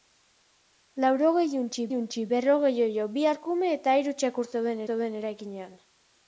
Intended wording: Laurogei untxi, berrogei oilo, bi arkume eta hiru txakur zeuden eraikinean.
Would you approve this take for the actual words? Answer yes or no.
no